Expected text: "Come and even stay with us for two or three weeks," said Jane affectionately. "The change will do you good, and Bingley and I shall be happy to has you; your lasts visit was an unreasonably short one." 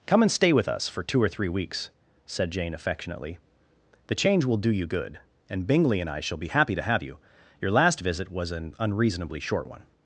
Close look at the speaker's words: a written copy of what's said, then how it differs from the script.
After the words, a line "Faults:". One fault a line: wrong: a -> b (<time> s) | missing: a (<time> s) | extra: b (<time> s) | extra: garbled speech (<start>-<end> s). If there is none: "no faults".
"Come and stay with us for two or three weeks," said Jane affectionately. "The change will do you good, and Bingley and I shall be happy to have you; your last visit was an unreasonably short one."
Faults:
missing: even (0.3 s)
wrong: has -> have (6.9 s)
wrong: lasts -> last (7.7 s)